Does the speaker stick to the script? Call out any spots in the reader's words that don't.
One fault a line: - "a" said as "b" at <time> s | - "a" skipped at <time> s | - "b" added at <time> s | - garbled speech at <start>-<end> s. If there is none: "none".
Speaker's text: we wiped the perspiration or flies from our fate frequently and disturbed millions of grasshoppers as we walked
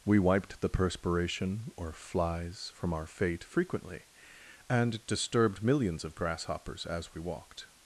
none